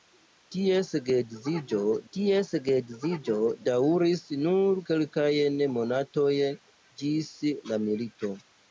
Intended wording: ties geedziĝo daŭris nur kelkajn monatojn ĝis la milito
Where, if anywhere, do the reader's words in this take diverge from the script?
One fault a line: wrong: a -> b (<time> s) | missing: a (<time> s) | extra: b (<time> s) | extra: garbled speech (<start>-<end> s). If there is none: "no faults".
extra: ties geedziĝo (2.1 s)